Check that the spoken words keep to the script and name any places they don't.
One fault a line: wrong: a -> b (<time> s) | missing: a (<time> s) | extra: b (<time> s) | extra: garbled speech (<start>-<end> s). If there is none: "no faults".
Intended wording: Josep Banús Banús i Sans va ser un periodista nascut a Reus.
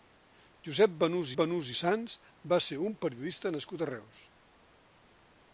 no faults